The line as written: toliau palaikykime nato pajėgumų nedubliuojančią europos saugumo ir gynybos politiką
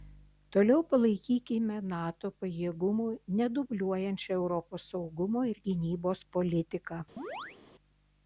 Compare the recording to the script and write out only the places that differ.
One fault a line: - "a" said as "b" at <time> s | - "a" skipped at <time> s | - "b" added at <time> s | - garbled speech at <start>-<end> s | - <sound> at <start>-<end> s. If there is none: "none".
- chirp at 7.2-7.6 s